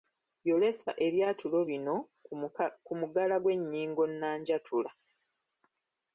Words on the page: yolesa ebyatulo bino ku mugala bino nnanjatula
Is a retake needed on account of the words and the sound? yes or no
yes